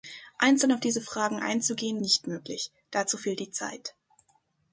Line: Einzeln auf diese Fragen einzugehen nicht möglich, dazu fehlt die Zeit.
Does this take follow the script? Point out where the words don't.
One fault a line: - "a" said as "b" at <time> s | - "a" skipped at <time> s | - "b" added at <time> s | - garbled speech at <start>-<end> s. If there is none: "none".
none